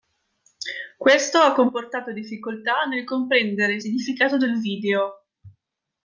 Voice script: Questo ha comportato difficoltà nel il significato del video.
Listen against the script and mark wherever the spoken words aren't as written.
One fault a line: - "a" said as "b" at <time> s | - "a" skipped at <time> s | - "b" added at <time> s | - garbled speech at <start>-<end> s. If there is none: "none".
- "comprendere" added at 3.0 s